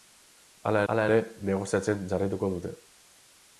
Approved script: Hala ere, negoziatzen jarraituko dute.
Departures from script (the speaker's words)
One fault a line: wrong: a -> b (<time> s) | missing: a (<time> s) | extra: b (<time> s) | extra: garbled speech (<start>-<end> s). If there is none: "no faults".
extra: hala (0.9 s)